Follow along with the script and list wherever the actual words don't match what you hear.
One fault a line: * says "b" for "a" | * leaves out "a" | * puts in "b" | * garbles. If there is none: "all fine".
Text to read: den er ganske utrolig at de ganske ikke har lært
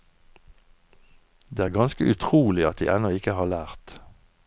* says "det" for "den"
* says "ennå" for "ganske"